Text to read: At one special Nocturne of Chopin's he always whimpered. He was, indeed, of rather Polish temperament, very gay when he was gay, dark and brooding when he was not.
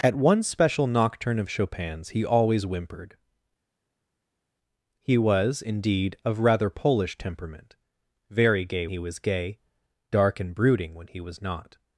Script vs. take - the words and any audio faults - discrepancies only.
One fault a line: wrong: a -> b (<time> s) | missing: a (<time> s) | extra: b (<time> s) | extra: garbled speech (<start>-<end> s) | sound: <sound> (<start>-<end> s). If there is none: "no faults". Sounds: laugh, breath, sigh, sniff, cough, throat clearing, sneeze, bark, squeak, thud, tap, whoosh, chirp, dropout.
missing: when (8.9 s)